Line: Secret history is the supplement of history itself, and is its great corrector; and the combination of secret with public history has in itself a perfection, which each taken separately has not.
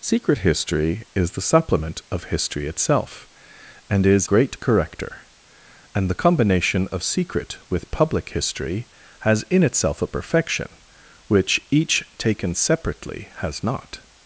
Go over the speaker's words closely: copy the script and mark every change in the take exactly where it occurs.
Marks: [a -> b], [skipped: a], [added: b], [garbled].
Secret history is the supplement of history itself, and is [skipped: its] great corrector; and the combination of secret with public history has in itself a perfection, which each taken separately has not.